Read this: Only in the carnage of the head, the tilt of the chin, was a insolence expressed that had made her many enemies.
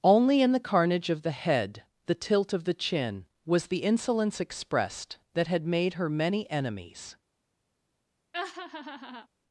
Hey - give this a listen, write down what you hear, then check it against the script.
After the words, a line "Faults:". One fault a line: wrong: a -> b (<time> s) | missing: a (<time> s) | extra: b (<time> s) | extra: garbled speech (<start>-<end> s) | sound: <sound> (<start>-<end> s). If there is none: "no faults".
Only in the carnage of the head, the tilt of the chin, was the insolence expressed that had made her many enemies.
Faults:
wrong: a -> the (3.7 s)
sound: laugh (8.3-9.3 s)